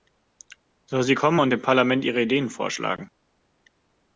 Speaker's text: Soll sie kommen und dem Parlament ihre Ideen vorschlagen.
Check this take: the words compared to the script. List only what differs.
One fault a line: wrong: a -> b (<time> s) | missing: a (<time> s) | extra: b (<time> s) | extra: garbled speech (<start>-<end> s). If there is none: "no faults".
no faults